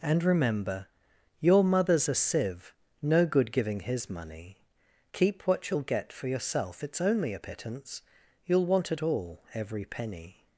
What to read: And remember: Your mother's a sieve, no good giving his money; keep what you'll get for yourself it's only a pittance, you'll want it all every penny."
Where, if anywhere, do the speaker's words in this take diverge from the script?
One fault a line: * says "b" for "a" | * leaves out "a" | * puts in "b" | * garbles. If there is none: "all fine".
all fine